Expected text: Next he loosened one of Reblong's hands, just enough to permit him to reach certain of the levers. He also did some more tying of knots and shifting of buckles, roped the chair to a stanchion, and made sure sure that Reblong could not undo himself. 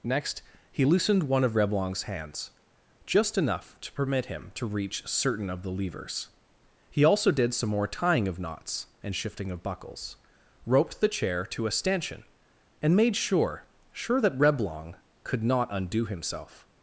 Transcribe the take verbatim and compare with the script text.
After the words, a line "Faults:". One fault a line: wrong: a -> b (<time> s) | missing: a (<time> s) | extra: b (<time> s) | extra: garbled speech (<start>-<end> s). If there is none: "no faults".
Next he loosened one of Reblong's hands, just enough to permit him to reach certain of the levers. He also did some more tying of knots and shifting of buckles, roped the chair to a stanchion, and made sure sure that Reblong could not undo himself.
Faults:
no faults